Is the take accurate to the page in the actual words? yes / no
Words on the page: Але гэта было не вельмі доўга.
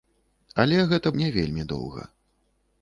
no